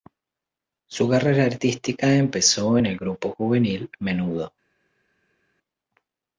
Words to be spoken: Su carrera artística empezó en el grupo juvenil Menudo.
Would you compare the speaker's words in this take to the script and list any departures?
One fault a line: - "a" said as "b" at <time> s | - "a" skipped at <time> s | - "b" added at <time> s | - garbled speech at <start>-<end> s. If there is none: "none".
none